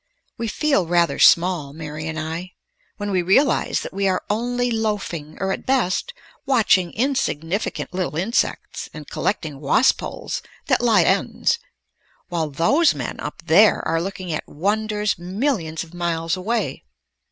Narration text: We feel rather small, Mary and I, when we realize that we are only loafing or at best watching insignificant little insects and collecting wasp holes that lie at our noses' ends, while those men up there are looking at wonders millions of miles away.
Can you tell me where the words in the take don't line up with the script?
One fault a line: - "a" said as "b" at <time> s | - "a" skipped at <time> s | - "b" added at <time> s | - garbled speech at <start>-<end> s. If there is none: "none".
- "at our noses" skipped at 11.0 s